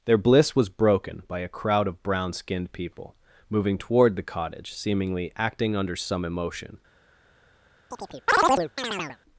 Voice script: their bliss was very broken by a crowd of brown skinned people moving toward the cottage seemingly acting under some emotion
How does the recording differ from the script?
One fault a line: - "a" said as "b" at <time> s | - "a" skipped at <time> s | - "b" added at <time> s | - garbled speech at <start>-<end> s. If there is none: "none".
- "very" skipped at 0.7 s